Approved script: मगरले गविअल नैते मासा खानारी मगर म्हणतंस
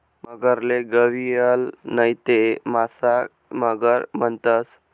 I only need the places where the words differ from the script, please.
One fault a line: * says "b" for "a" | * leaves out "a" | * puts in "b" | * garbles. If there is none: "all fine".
* leaves out "खानारी"